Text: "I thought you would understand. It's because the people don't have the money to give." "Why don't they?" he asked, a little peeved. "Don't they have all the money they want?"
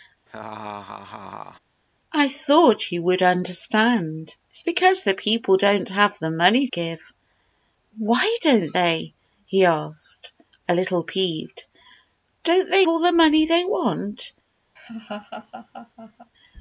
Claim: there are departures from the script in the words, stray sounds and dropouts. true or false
true